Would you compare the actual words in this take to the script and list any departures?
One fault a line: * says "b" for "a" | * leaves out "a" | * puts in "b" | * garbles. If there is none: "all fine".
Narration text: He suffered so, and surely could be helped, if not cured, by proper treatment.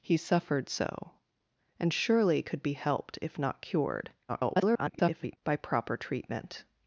* garbles